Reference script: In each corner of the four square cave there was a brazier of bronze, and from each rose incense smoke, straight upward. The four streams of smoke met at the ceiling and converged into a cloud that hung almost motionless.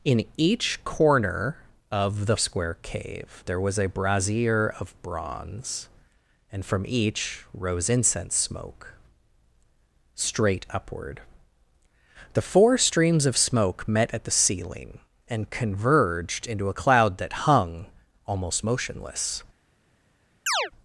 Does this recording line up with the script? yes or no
no